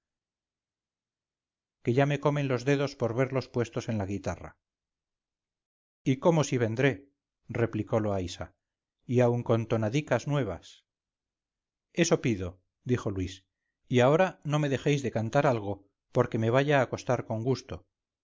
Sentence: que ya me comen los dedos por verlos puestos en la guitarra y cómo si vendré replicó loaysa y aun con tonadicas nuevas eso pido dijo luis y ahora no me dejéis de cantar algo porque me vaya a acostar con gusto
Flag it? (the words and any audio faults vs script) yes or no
no